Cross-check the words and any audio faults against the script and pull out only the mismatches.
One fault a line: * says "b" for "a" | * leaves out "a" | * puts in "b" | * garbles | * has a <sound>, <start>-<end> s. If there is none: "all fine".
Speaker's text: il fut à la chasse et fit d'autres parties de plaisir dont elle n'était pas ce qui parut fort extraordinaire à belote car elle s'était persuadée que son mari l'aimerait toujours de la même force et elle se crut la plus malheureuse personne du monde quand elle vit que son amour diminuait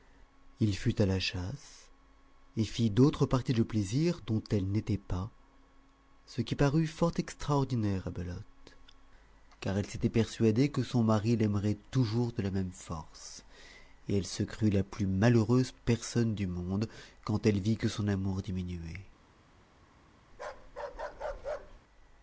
* has a bark, 20.3-21.8 s